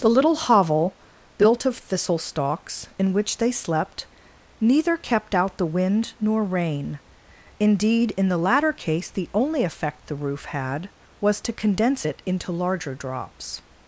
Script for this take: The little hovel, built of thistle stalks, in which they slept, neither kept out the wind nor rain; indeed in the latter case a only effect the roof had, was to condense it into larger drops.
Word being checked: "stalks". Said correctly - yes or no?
yes